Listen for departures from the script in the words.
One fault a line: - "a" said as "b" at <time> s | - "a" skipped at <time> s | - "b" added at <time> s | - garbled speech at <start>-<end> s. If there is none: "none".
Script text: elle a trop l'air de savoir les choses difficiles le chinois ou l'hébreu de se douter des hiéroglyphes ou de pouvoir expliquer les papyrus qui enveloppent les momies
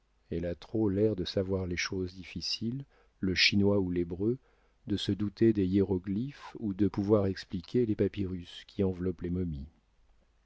none